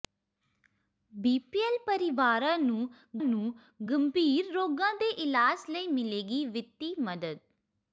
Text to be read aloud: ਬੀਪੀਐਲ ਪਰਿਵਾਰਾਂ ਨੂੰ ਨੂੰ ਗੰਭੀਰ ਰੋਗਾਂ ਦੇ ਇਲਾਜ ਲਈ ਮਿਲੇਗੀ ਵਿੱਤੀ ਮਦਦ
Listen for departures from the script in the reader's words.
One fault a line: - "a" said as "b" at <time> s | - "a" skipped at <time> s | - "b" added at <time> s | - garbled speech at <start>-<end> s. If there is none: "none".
none